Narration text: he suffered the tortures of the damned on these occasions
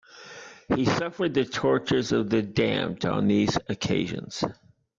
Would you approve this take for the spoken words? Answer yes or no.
yes